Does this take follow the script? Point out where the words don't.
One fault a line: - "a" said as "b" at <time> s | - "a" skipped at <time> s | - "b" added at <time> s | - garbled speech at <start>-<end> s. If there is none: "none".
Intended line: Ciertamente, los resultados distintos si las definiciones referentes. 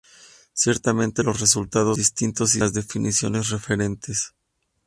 none